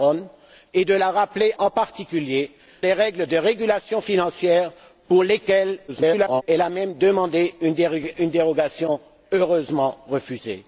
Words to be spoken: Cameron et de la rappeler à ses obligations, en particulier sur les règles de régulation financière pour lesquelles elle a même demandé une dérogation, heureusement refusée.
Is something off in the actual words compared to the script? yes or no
yes